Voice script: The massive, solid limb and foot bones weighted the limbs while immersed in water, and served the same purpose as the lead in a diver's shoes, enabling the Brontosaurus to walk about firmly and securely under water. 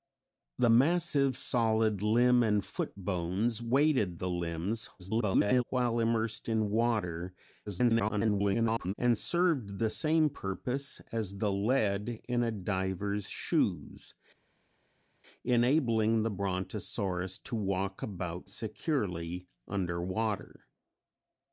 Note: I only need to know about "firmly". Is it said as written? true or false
false